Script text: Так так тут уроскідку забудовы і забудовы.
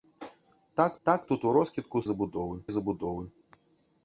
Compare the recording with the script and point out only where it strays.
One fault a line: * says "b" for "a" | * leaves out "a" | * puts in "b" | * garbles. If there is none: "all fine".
all fine